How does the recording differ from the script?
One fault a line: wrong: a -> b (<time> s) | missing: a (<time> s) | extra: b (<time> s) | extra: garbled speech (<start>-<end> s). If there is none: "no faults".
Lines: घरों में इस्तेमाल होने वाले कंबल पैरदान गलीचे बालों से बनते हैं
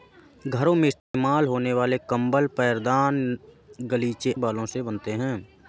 no faults